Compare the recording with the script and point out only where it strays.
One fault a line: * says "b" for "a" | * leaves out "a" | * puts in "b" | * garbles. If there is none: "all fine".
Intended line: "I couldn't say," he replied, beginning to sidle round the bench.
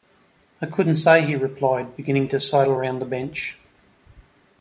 all fine